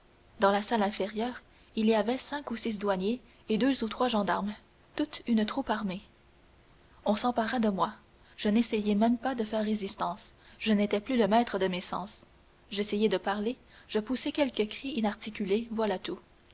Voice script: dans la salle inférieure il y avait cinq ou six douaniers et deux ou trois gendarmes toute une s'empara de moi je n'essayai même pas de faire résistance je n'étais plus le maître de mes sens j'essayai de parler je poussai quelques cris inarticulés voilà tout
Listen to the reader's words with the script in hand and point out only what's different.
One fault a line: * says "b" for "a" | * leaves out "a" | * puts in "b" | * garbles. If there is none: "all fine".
* puts in "troupe armée on"